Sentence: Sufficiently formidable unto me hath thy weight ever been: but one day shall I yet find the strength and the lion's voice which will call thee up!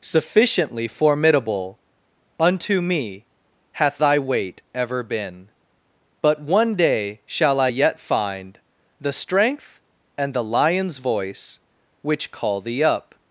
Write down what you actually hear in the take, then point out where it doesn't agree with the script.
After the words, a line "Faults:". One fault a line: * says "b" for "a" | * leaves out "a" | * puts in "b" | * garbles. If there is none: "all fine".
Sufficiently formidable unto me hath thy weight ever been: but one day shall I yet find the strength and the lion's voice which call thee up!
Faults:
* leaves out "will"